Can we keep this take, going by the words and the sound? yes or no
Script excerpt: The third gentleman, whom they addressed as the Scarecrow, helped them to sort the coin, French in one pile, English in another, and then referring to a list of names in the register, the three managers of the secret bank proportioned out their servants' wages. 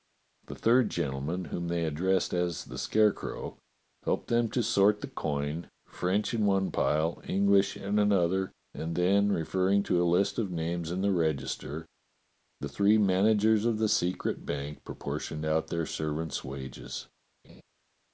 no